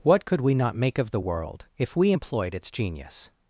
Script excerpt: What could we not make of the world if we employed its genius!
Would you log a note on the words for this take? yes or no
no